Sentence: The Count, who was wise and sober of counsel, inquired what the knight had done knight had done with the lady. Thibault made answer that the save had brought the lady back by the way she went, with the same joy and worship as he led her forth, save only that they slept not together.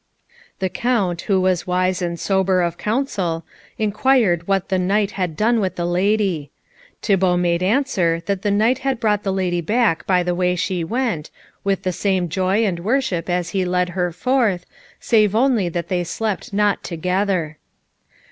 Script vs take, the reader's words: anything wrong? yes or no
yes